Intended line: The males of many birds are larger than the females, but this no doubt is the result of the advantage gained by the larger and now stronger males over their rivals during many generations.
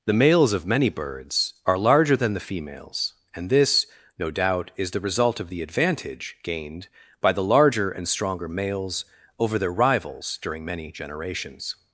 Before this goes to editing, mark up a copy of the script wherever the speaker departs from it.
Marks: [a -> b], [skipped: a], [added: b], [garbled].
The males of many birds are larger than the females, [but -> and] this no doubt is the result of the advantage gained by the larger and [skipped: now] stronger males over their rivals during many generations.